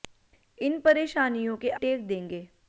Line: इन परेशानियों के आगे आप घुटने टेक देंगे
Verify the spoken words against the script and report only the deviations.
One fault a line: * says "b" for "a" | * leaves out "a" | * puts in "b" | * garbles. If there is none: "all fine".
* leaves out "आगे आप घुटने"